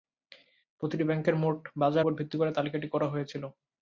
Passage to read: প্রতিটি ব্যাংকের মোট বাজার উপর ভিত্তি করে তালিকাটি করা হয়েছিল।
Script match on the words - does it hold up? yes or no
yes